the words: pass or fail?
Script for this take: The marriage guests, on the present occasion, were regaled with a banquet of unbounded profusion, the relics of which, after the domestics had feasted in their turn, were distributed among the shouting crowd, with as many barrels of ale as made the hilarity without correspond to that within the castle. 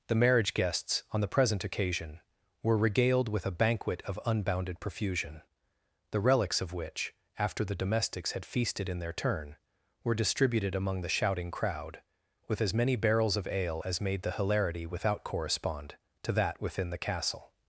pass